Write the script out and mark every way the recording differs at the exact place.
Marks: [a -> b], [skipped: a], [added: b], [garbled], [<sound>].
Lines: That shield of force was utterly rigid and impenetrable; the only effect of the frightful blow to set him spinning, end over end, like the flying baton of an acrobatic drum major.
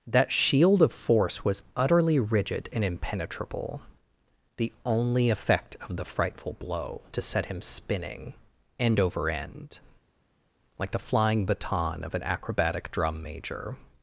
That shield of force was utterly rigid and impenetrable; the only effect of the frightful blow to set him spinning, end over end, like the flying baton of an acrobatic drum major.